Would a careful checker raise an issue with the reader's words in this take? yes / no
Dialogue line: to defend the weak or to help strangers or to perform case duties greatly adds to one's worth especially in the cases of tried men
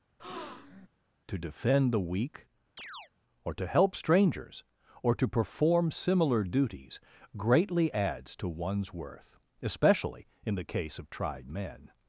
yes